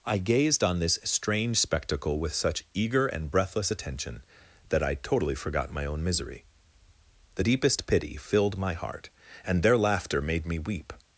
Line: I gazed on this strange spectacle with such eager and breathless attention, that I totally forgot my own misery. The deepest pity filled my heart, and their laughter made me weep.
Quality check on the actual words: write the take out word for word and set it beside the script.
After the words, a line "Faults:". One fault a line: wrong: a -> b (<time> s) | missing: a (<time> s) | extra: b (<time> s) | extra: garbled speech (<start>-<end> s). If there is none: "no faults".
I gazed on this strange spectacle with such eager and breathless attention, that I totally forgot my own misery. The deepest pity filled my heart, and their laughter made me weep.
Faults:
no faults